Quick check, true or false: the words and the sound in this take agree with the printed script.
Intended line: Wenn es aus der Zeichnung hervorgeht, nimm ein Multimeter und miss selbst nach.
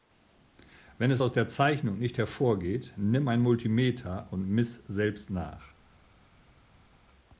false